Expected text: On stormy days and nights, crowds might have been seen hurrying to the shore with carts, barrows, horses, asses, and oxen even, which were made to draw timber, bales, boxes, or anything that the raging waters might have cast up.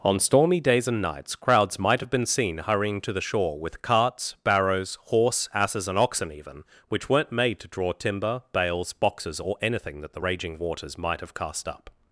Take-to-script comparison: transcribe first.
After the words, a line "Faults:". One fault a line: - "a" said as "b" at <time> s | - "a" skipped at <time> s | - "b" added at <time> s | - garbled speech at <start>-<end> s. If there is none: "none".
On stormy days and nights, crowds might have been seen hurrying to the shore with carts, barrows, horse, asses, and oxen even, which weren't made to draw timber, bales, boxes, or anything that the raging waters might have cast up.
Faults:
- "horses" said as "horse" at 5.0 s
- "were" said as "weren't" at 7.1 s